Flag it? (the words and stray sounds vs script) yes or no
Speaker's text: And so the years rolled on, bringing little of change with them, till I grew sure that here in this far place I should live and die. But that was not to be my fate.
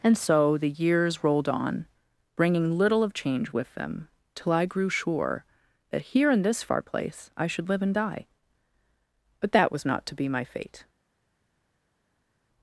no